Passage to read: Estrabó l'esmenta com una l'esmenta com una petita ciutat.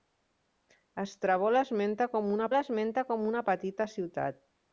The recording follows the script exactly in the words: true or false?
true